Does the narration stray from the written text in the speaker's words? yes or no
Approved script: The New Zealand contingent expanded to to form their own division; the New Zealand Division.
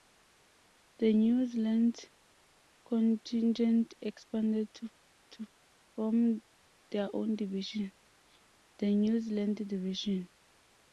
no